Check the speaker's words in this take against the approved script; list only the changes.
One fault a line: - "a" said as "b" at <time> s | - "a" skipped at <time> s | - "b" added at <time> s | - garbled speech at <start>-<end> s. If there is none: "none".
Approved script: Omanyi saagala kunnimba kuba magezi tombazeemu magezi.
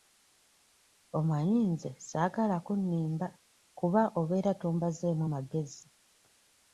- "nze" added at 1.7 s
- "magezi" said as "obeera" at 4.2 s